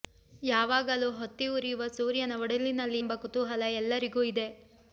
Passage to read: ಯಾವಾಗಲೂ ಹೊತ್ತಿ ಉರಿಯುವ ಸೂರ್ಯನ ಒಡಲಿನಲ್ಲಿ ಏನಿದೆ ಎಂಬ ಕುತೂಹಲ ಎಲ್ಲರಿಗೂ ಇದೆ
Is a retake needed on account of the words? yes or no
yes